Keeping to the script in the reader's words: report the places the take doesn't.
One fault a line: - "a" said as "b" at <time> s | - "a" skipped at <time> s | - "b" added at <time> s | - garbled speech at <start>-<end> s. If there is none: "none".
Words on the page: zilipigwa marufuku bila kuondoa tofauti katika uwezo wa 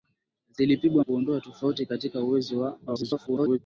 - "marufuku bila" skipped at 1.1 s
- garbled speech at 2.9-3.6 s